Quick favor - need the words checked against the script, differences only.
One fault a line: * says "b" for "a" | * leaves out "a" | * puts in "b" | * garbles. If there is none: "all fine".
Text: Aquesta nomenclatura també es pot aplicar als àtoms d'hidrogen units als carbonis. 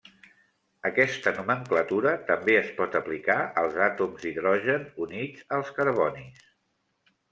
all fine